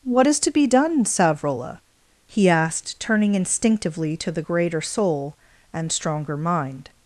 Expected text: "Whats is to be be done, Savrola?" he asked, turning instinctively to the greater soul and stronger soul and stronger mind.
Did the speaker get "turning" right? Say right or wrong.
right